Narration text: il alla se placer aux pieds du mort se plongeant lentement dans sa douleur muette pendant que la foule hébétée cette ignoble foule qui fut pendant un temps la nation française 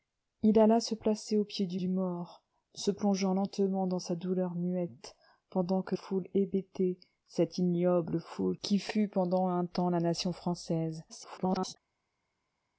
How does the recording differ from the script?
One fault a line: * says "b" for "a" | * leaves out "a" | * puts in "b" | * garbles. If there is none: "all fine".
* puts in "du"
* leaves out "la"
* garbles